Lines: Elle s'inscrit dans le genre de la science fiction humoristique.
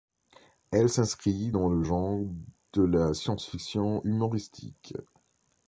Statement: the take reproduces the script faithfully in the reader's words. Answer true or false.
true